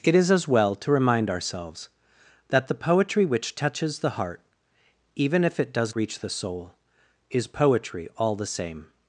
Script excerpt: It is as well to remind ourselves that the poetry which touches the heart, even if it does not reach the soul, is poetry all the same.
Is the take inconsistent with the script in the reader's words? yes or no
yes